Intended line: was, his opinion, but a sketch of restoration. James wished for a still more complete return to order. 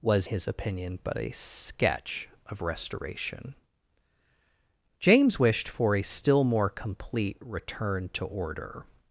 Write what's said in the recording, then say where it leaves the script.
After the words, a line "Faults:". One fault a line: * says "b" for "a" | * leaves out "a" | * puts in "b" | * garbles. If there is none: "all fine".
was, his opinion, but a sketch of restoration. James wished for a still more complete return to order.
Faults:
all fine